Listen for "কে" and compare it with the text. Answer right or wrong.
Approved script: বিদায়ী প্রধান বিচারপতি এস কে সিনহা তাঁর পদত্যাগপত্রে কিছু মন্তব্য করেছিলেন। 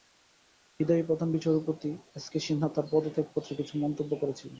right